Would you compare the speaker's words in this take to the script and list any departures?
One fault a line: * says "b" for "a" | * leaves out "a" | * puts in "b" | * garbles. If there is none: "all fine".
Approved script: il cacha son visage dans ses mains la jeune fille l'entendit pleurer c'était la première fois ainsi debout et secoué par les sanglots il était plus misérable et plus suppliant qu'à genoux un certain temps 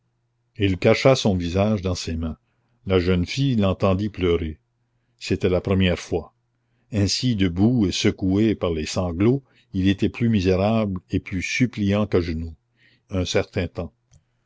all fine